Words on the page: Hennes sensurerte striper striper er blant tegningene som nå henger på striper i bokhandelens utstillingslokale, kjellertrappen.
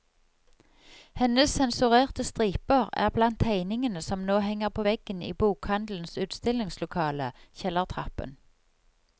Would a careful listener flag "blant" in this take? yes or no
no